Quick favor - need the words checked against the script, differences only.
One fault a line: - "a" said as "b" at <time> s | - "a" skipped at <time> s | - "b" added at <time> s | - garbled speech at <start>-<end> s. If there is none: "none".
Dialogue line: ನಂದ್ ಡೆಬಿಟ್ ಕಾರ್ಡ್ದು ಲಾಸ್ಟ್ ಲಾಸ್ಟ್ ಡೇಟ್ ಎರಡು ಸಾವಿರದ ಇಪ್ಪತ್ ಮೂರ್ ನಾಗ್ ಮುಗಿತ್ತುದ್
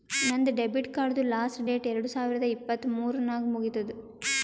- "ಲಾಸ್ಟ್" skipped at 1.6 s